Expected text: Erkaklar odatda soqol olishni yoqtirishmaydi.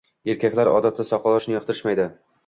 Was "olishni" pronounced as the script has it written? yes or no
yes